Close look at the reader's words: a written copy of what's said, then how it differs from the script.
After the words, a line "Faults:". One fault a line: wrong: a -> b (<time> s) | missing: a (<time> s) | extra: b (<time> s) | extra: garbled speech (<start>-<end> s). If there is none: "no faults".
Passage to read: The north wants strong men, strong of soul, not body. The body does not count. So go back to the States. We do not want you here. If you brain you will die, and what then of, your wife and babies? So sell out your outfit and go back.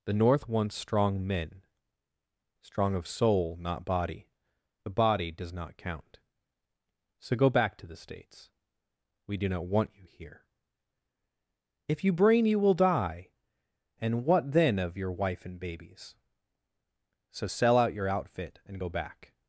The north wants strong men, strong of soul, not body. The body does not count. So go back to the States. We do not want you here. If you brain you will die, and what then of, your wife and babies? So sell out your outfit and go back.
Faults:
no faults